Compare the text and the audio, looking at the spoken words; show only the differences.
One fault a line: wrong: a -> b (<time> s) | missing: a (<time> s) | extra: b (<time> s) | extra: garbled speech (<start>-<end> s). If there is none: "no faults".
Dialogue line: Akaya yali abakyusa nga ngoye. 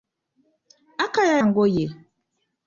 missing: yali abakyusa nga (1.4 s)